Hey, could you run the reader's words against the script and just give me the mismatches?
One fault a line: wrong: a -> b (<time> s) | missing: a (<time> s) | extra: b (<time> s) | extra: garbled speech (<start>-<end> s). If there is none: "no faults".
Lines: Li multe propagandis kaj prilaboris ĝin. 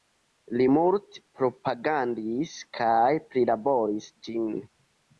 no faults